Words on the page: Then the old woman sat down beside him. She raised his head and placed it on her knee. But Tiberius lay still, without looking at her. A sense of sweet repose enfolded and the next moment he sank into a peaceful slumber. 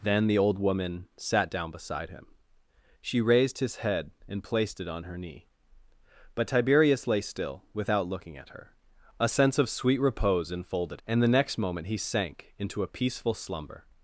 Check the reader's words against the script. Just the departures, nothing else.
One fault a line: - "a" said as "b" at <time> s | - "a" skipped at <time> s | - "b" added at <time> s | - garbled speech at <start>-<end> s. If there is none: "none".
none